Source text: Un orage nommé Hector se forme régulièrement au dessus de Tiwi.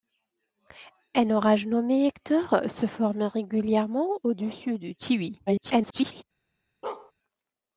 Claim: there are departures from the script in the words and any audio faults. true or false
true